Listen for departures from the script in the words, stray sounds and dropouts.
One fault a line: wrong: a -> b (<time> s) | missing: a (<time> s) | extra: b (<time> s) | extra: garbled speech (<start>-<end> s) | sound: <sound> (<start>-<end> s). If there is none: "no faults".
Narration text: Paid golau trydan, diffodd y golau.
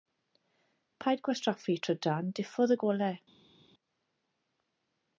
wrong: golau -> gwastraffu (1.3 s)